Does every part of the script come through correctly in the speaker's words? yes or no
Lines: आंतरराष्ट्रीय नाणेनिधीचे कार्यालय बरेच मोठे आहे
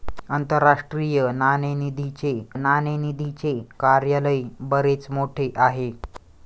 no